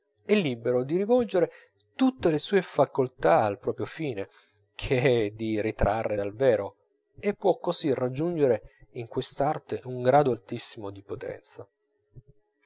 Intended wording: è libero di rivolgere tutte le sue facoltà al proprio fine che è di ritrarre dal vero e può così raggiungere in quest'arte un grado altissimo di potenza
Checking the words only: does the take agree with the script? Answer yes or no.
yes